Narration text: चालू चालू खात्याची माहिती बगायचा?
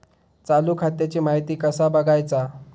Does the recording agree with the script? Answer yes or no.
no